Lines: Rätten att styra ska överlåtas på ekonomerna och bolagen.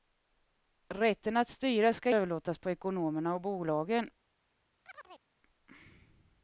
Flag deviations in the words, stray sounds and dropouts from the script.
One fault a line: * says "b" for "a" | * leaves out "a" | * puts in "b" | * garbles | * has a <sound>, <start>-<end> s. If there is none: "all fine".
* has a chirp, 4.8-5.2 s